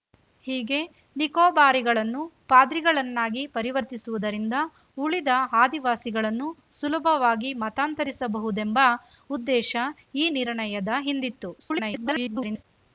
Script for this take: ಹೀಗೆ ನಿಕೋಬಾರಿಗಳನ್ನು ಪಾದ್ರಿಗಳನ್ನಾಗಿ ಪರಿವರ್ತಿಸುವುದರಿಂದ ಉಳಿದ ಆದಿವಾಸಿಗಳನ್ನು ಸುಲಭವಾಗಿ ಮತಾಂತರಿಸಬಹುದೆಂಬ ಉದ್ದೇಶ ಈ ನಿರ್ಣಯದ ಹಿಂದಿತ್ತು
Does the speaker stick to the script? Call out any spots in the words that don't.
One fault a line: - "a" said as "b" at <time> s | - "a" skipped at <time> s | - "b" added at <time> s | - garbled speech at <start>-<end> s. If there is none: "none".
- garbled speech at 11.6-12.6 s